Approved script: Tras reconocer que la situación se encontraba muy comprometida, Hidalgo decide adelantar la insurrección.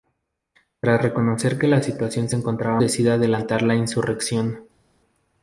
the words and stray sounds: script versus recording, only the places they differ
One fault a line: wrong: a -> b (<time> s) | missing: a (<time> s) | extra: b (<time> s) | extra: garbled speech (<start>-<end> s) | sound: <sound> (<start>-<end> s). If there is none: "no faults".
missing: muy comprometida Hidalgo (2.8 s)